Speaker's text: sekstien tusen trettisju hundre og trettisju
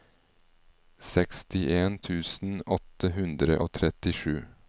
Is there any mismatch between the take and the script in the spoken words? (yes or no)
yes